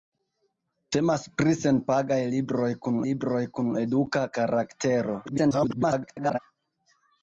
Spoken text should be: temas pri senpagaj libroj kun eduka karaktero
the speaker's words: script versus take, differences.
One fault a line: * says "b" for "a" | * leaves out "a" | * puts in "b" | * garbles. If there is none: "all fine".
* puts in "libroj kun"
* garbles